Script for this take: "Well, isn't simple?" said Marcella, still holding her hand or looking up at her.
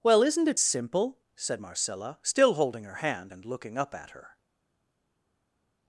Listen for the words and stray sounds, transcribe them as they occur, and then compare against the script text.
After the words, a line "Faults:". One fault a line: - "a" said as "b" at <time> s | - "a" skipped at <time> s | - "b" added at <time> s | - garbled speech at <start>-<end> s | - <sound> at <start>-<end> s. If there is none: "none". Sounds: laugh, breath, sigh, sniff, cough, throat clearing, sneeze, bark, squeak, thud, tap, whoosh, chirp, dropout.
"Well, isn't it simple?" said Marcella, still holding her hand and looking up at her.
Faults:
- "it" added at 0.5 s
- "or" said as "and" at 3.3 s